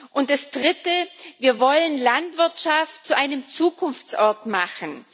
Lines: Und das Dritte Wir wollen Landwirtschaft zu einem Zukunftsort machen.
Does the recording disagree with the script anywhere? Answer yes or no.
no